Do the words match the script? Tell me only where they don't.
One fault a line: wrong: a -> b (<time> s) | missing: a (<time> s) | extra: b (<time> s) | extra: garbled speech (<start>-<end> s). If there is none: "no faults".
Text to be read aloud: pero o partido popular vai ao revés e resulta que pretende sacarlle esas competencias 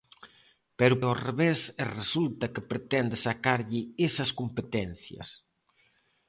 missing: partido popular vai (1.0 s)